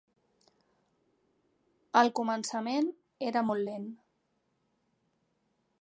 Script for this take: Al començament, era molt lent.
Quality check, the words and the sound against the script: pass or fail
pass